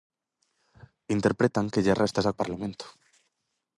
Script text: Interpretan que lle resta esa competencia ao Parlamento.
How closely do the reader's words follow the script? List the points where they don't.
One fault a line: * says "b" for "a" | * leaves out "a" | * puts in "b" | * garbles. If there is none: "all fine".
* leaves out "competencia"